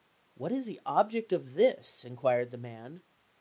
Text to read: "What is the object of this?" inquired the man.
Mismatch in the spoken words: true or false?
false